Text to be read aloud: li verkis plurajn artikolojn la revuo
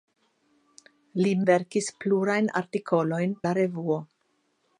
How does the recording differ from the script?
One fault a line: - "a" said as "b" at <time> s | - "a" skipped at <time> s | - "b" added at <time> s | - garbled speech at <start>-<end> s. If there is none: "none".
none